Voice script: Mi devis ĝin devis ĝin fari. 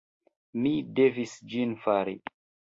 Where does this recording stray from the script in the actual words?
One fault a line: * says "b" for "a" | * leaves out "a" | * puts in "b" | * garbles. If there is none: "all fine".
* leaves out "devis ĝin"